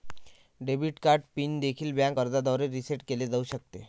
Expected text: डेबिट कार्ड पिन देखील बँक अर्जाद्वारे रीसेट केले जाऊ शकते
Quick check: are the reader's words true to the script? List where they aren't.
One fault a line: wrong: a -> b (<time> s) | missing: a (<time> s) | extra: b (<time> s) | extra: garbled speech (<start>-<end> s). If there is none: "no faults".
no faults